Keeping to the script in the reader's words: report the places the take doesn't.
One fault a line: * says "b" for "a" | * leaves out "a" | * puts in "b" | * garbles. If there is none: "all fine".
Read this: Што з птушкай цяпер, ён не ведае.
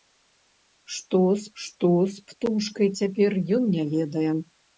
* puts in "што з"